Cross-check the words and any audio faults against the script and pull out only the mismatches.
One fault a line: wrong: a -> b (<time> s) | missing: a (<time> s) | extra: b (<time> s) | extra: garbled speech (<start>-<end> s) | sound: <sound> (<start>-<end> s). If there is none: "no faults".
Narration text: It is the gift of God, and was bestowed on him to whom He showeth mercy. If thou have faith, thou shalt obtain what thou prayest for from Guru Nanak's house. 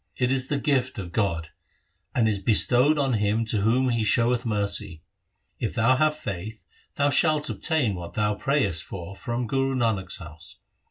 wrong: was -> is (2.3 s)